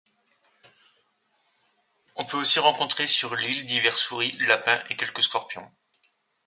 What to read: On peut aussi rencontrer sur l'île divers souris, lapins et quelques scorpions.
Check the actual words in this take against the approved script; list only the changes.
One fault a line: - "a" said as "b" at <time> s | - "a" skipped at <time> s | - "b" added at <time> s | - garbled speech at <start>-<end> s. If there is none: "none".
none